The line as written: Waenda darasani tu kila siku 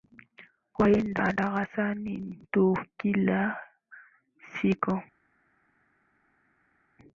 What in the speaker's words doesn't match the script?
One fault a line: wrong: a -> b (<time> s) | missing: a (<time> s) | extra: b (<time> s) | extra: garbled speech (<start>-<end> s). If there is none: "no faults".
no faults